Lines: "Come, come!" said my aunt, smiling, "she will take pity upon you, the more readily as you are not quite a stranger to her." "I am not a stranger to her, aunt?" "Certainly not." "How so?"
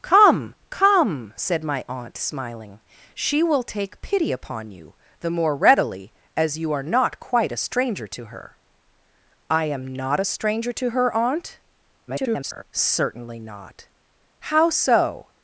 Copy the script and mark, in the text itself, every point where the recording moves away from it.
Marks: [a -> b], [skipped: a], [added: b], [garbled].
"Come, come!" said my aunt, smiling, "she will take pity upon you, the more readily as you are not quite a stranger to her." "I am not a stranger to her, aunt?" [garbled] "Certainly not." "How so?"